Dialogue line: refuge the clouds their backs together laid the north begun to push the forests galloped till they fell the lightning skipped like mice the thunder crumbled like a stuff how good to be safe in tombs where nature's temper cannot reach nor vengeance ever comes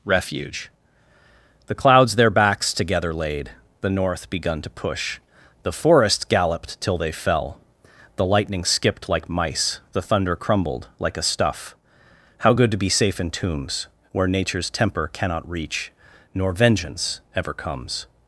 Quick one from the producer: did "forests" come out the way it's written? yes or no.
no